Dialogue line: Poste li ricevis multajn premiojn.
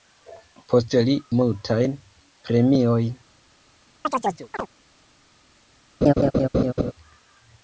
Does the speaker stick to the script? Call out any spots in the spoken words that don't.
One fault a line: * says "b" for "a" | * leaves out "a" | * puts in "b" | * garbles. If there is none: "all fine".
* leaves out "ricevis"